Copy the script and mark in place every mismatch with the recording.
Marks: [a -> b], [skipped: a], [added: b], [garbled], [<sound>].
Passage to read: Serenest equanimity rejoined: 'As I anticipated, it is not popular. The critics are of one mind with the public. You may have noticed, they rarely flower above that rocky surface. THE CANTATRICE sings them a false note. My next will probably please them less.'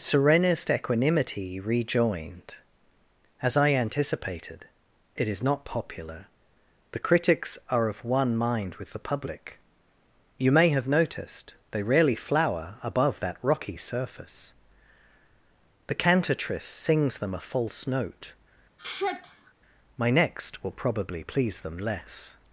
Serenest equanimity rejoined: 'As I anticipated, it is not popular. The critics are of one mind with the public. You may have noticed, they rarely flower above that rocky surface. THE CANTATRICE sings them a false note. [sigh] My next will probably please them less.'